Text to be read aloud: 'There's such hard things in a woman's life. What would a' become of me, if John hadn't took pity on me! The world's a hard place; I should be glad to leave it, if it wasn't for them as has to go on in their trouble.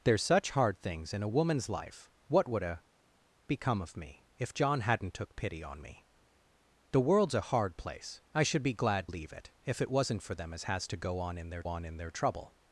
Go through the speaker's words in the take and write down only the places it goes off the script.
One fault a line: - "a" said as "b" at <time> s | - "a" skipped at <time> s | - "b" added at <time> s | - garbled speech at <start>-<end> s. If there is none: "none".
- "to" skipped at 9.1 s
- "on in their" added at 11.7 s